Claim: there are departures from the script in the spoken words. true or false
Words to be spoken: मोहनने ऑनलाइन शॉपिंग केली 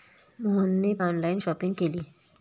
false